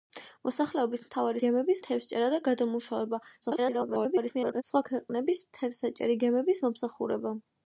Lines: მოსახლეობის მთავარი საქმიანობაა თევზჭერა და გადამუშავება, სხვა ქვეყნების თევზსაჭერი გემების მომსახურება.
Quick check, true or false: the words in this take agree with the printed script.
false